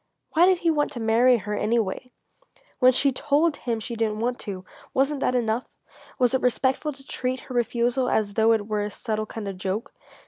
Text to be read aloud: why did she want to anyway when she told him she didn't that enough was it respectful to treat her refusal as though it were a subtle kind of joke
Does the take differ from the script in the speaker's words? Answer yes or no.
yes